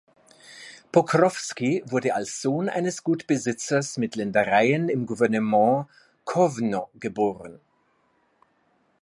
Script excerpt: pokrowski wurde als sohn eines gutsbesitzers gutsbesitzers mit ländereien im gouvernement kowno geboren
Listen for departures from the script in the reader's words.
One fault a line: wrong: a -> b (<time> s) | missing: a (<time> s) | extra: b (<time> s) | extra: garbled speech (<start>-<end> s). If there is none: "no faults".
missing: gutsbesitzers (4.0 s)